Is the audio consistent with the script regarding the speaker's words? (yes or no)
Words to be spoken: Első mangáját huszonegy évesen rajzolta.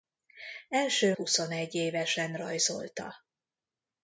no